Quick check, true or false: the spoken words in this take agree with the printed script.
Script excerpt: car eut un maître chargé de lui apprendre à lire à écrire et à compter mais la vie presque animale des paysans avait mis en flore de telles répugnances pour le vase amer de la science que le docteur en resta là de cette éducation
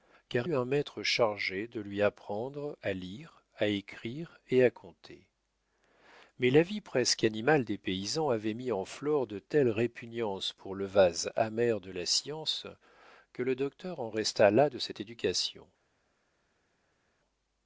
true